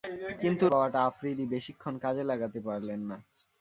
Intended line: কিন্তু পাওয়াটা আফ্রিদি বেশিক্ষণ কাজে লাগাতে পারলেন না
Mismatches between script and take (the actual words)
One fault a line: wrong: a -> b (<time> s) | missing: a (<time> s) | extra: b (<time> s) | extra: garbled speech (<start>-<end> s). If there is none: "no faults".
no faults